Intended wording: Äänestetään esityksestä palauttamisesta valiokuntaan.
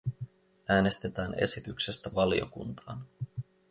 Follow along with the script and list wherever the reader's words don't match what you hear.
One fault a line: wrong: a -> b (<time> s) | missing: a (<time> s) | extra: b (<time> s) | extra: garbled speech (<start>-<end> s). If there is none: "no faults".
missing: palauttamisesta (2.1 s)